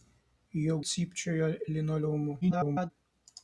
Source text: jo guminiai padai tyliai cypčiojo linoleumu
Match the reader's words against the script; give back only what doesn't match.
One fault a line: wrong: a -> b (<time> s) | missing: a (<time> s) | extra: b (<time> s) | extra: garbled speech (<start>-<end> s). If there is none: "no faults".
missing: guminiai padai tyliai (0.8 s)
extra: garbled speech (2.4-2.9 s)